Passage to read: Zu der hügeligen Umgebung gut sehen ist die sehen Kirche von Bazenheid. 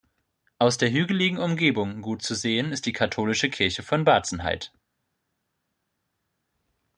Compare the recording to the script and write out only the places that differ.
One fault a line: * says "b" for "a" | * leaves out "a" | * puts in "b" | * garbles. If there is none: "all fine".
* says "Aus" for "Zu"
* puts in "zu"
* says "katholische" for "sehen"